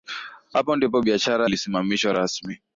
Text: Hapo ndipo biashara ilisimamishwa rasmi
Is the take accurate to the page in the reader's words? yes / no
yes